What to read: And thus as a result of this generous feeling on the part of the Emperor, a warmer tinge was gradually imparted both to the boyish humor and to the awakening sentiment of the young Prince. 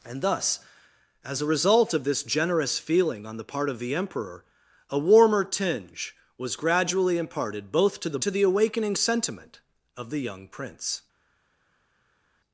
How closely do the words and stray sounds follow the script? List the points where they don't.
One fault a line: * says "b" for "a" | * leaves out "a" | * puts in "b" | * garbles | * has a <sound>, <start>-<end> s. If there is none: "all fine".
* leaves out "boyish humor and"